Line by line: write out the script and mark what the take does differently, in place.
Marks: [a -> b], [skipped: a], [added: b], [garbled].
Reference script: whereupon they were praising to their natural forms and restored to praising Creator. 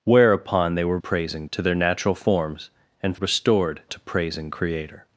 whereupon they were praising to their natural forms and restored to praising Creator.